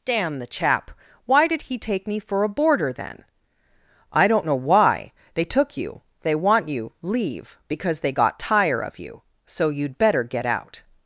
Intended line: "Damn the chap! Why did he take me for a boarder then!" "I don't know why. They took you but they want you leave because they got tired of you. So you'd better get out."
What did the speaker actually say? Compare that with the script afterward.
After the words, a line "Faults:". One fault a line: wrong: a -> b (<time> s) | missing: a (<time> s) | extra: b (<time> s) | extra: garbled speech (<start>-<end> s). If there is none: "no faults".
"Damn the chap! Why did he take me for a boarder then!" "I don't know why. They took you they want you leave because they got tire of you. So you'd better get out."
Faults:
missing: but (6.0 s)
wrong: tired -> tire (8.4 s)